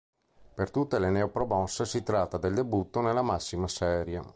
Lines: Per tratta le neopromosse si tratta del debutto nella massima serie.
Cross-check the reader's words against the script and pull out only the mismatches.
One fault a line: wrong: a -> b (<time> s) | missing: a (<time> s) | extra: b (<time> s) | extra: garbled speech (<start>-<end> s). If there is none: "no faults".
wrong: tratta -> tutte (0.7 s)